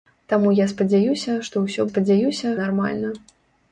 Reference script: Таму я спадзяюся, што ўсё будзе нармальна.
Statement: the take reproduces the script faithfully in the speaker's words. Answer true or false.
false